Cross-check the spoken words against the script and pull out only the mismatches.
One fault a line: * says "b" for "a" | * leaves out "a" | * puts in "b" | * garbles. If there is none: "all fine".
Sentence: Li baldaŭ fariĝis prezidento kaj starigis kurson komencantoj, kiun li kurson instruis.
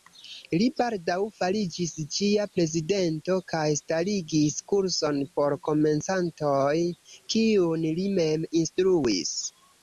* puts in "ĝia"
* puts in "por"
* says "mem" for "kurson"